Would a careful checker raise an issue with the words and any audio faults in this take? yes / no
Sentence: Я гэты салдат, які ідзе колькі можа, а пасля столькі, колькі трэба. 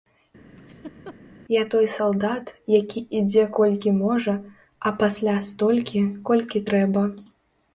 yes